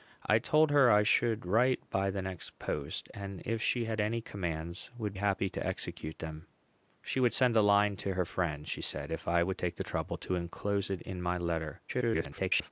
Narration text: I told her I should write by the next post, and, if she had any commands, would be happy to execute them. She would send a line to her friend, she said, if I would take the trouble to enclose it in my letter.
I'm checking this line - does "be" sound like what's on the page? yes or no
no